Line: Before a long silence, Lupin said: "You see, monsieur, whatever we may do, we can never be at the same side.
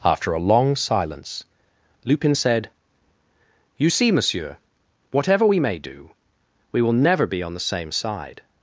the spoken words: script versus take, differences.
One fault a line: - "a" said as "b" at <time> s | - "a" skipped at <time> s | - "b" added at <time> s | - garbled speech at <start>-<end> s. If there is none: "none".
- "Before" said as "After" at 0.0 s
- "can" said as "will" at 6.8 s
- "at" said as "on" at 7.4 s